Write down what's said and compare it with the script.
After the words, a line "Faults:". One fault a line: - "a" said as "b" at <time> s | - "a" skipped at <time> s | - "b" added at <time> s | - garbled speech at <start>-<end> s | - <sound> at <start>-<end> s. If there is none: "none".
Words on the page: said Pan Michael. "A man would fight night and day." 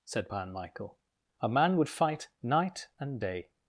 said Pan Michael. "A man would fight night and day."
Faults:
none